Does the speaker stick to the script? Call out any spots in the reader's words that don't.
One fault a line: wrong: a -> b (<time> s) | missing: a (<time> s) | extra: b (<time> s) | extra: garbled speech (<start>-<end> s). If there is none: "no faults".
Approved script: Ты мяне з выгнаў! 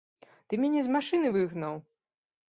extra: машыны (0.9 s)